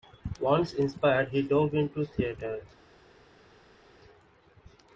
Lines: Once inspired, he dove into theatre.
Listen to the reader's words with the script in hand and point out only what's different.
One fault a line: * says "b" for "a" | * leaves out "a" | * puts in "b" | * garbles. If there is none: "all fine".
all fine